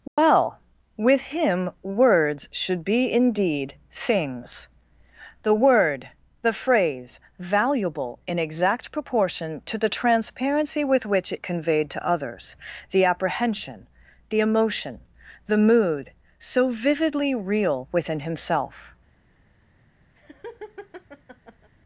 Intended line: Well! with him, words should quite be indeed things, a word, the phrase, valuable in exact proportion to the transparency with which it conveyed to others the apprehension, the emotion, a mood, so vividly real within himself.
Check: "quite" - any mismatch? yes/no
yes